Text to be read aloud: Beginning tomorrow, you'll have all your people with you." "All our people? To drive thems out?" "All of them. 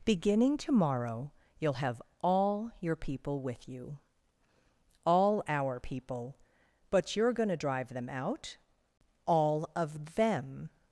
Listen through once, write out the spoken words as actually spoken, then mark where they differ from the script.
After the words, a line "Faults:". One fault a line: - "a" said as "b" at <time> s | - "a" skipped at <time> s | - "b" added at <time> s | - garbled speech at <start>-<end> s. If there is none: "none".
Beginning tomorrow, you'll have all your people with you." "All our people? But you're going to drive them out?" "All of them.
Faults:
- "But you're going" added at 6.9 s
- "thems" said as "them" at 7.9 s